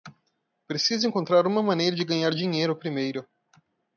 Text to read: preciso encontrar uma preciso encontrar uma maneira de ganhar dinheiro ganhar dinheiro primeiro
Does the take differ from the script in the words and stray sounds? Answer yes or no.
yes